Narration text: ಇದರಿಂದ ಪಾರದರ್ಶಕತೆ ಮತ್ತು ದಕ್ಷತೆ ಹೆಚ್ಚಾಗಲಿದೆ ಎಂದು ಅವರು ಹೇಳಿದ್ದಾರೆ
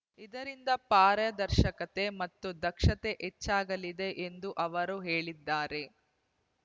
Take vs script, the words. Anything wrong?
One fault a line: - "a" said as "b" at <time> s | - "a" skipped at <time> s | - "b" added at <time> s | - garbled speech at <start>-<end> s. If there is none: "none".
none